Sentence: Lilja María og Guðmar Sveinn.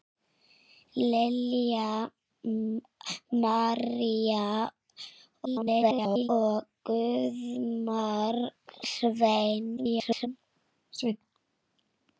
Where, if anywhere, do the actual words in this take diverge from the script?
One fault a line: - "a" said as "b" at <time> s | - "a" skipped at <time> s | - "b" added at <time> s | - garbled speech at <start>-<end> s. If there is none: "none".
- garbled speech at 5.4-6.3 s
- garbled speech at 9.8-10.3 s